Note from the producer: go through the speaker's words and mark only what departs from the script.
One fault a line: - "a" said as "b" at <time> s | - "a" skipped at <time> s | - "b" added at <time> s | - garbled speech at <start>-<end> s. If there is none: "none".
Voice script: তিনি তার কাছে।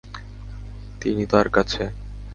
none